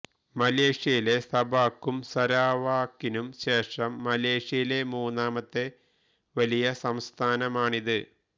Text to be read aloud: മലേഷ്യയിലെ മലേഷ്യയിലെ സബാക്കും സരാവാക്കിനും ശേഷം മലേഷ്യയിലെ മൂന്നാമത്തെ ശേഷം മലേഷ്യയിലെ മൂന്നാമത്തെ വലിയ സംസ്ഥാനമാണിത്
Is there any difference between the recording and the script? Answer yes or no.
yes